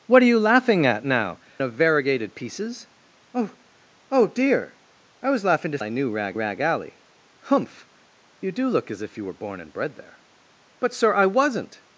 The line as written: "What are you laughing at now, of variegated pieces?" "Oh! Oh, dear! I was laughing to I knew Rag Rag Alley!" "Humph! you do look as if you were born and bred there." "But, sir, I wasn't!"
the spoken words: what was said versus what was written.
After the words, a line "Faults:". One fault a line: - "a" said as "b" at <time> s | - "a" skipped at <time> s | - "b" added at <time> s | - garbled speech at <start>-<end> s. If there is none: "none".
"What are you laughing at now, of variegated pieces?" "Oh! Oh, dear! I was laughing to I knew Rag Rag Alley!" "Humph! you do look as if you were born and bred there." "But, sir, I wasn't!"
Faults:
none